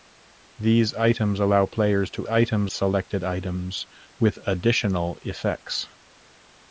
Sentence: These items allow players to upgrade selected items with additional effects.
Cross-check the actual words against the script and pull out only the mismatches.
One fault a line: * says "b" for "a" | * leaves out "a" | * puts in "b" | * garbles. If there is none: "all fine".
* says "items" for "upgrade"